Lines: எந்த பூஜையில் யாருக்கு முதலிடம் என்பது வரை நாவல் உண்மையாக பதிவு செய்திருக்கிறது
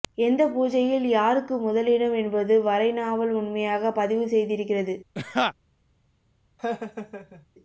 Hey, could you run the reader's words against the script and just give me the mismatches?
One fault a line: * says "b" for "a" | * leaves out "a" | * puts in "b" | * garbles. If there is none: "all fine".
all fine